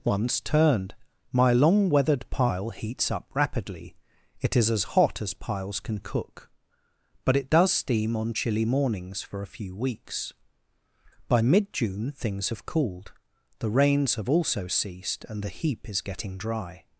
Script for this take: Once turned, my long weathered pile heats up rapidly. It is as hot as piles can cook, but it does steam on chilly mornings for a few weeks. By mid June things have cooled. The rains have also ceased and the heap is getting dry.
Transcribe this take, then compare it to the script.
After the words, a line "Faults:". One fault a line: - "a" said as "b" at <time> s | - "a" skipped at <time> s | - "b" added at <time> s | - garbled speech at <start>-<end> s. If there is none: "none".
Once turned, my long weathered pile heats up rapidly. It is as hot as piles can cook, but it does steam on chilly mornings for a few weeks. By mid June things have cooled. The rains have also ceased and the heap is getting dry.
Faults:
none